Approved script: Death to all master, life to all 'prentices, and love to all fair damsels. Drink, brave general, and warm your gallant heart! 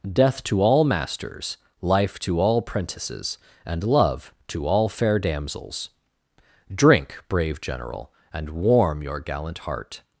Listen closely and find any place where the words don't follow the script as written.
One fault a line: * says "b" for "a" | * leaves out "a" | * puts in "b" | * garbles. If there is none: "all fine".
* says "masters" for "master"